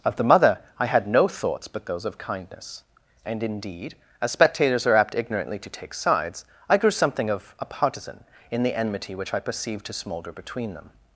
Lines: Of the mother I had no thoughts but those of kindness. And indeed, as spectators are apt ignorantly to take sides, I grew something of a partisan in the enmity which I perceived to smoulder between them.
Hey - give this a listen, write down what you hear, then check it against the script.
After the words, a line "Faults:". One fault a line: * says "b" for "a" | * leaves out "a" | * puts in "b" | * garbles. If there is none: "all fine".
Of the mother I had no thoughts but those of kindness. And indeed, as spectators are apt ignorantly to take sides, I grew something of a partisan in the enmity which I perceived to smoulder between them.
Faults:
all fine